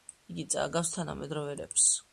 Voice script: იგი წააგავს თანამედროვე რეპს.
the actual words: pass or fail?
pass